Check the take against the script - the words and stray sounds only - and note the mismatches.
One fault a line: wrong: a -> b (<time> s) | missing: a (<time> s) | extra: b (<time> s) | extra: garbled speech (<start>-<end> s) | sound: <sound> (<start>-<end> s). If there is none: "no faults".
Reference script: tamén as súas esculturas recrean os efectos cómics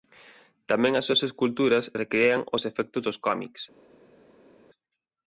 extra: dos (3.1 s)